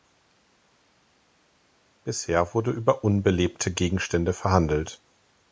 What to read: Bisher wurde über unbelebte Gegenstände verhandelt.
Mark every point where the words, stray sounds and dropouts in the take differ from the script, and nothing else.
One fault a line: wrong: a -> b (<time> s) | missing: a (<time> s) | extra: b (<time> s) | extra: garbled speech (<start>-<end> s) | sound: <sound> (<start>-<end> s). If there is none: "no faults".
no faults